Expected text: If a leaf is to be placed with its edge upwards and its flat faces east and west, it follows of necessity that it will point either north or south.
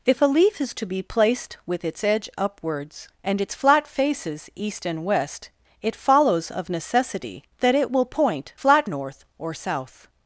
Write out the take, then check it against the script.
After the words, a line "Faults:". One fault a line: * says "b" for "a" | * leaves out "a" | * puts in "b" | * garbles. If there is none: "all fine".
If a leaf is to be placed with its edge upwards and its flat faces east and west, it follows of necessity that it will point flat north or south.
Faults:
* says "flat" for "either"